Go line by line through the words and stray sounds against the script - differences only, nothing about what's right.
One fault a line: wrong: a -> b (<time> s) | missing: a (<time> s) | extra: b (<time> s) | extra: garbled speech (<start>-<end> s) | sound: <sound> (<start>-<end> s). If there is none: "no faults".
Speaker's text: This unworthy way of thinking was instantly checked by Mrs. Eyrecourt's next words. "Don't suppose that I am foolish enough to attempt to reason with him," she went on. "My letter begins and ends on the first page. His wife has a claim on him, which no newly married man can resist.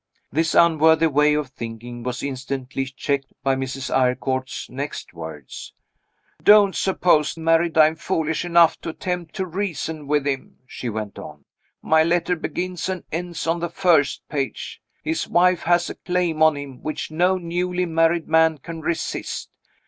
wrong: that -> married (7.3 s)